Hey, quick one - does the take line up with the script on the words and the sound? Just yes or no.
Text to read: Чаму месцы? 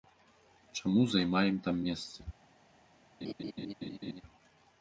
no